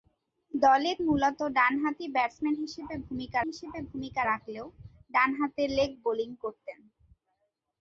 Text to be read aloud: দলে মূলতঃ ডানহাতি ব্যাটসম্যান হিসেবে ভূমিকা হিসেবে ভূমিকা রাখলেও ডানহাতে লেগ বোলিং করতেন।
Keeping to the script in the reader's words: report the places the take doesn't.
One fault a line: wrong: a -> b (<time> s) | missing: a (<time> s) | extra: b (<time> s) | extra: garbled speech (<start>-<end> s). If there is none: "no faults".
no faults